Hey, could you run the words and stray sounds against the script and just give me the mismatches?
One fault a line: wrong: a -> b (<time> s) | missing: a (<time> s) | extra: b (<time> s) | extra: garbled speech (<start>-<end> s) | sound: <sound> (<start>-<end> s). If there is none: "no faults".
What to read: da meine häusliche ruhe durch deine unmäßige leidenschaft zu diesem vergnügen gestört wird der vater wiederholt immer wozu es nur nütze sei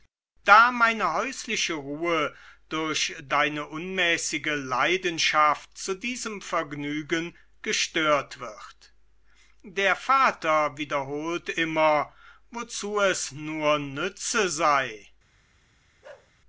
sound: bark (16.0-16.3 s)